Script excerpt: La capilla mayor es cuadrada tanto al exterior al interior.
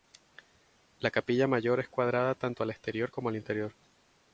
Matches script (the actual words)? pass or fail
fail